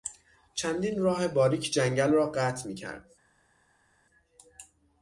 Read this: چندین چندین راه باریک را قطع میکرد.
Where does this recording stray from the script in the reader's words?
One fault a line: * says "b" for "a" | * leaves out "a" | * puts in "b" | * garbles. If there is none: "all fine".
* leaves out "چندین"
* puts in "جنگل"